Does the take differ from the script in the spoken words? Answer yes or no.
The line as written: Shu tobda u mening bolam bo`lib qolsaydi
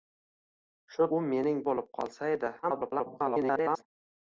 yes